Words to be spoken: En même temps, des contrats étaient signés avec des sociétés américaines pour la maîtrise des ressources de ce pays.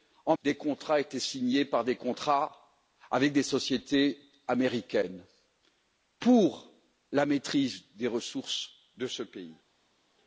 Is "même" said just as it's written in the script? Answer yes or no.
no